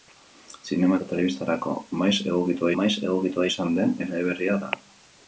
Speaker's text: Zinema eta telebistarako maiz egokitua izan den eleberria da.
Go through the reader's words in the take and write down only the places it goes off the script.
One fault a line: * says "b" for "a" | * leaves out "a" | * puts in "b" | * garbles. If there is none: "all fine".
* puts in "maiz egokitua"